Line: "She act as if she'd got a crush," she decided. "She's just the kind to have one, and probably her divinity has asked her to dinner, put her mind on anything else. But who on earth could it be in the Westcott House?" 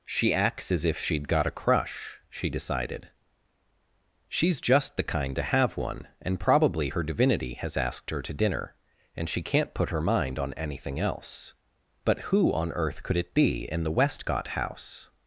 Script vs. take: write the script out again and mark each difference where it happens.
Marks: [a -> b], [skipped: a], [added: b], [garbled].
"She [act -> acts] as if she'd got a crush," she decided. "She's just the kind to have one, and probably her divinity has asked her to dinner, [added: and she can't] put her mind on anything else. But who on earth could it be in the Westcott House?"